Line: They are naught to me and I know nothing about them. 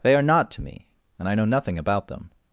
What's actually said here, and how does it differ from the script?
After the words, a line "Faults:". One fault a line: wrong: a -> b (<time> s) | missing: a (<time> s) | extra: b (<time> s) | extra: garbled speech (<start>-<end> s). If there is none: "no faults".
They are naught to me and I know nothing about them.
Faults:
no faults